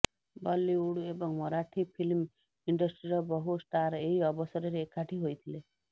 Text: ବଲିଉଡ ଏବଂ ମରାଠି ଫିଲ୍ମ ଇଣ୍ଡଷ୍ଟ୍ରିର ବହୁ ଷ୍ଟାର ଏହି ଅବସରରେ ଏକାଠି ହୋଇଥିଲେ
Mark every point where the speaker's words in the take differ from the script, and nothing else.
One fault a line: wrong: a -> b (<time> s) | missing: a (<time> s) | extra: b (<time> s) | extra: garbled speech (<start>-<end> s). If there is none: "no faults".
no faults